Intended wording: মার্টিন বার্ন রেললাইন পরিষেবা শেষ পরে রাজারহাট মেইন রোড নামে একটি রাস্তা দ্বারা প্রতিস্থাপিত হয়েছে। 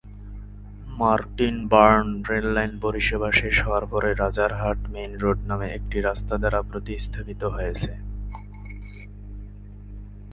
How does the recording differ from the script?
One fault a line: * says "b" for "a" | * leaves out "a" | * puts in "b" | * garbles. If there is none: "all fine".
* puts in "হওয়ার"